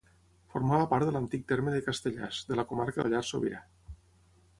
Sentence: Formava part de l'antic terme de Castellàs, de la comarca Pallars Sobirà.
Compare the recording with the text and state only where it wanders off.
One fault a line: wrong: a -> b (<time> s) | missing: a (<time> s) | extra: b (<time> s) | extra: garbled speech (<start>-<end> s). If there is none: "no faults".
no faults